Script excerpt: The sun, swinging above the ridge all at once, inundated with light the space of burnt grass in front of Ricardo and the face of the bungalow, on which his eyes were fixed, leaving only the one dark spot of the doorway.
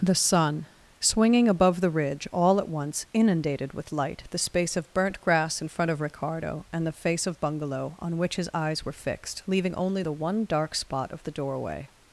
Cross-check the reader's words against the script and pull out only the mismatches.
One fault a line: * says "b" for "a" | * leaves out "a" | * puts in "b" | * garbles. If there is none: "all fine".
* leaves out "the"